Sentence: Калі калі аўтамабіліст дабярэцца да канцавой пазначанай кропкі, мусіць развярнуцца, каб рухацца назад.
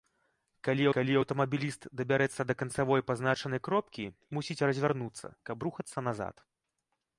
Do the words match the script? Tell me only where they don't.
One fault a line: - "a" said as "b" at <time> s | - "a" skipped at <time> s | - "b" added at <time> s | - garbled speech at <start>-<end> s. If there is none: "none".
none